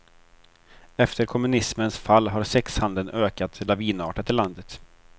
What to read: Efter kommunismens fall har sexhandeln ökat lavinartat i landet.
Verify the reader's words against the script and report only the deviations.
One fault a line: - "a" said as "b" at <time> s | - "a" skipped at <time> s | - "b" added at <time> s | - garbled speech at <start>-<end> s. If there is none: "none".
none